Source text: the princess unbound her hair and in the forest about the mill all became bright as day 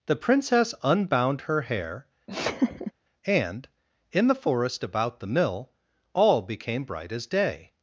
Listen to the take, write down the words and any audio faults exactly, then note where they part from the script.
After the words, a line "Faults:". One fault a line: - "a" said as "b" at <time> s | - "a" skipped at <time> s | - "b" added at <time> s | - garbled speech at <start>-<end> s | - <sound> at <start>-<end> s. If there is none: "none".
the princess unbound her hair and in the forest about the mill all became bright as day
Faults:
- laugh at 2.3-2.9 s